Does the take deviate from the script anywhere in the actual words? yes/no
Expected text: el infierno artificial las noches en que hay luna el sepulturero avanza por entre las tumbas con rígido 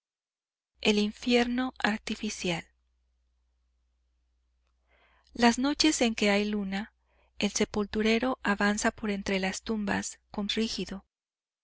no